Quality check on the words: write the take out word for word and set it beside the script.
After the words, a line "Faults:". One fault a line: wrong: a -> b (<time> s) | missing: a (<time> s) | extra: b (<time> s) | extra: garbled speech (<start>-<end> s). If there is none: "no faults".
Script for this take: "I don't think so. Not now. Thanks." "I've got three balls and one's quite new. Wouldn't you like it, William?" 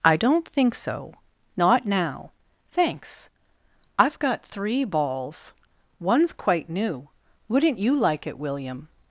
"I don't think so. Not now. Thanks." "I've got three balls one's quite new. Wouldn't you like it, William?"
Faults:
missing: and (5.5 s)